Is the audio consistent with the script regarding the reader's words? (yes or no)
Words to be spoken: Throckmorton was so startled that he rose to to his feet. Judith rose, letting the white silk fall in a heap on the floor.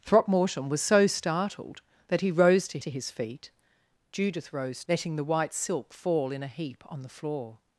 yes